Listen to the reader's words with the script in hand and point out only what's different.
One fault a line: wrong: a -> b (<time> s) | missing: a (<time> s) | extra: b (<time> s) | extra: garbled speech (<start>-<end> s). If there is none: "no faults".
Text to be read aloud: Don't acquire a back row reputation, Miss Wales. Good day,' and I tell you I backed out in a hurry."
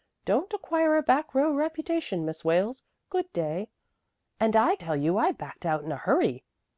no faults